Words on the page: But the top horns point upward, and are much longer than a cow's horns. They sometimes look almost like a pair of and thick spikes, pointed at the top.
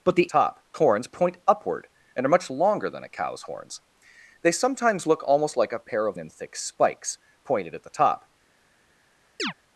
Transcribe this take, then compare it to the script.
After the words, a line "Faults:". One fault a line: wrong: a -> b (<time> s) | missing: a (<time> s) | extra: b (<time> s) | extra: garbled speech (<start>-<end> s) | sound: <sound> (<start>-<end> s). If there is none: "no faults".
But the top horns point upward, and are much longer than a cow's horns. They sometimes look almost like a pair of and thick spikes, pointed at the top.
Faults:
sound: chirp (9.4-9.5 s)